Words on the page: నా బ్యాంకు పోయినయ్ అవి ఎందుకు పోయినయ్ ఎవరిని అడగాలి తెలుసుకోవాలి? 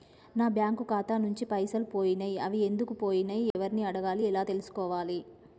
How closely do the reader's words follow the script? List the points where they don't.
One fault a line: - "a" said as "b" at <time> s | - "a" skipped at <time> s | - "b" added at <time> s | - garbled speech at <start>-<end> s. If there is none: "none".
- "ఖాతా నుంచి పైసలు" added at 0.8 s
- "ఎలా" added at 4.2 s